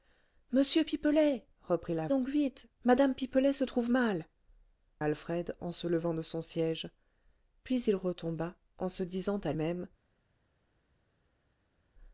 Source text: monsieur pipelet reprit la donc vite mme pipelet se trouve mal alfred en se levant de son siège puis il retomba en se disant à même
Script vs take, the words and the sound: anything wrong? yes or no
no